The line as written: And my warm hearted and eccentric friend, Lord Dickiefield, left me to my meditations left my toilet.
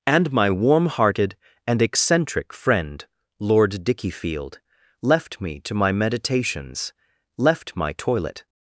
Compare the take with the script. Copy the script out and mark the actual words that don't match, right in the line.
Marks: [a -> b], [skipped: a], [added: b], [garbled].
And my warm hearted and eccentric friend, Lord Dickiefield, left me to my meditations left my toilet.